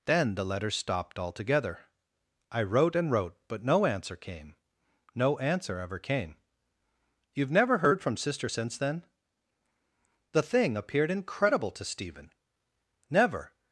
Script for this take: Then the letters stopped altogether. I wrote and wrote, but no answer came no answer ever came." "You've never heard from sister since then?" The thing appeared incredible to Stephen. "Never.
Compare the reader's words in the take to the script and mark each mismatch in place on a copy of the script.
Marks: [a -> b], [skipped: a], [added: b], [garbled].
Then the letters stopped altogether. I wrote and wrote, but no answer came no answer ever came." "You've never heard from sister since then?" The thing appeared incredible to Stephen. "Never.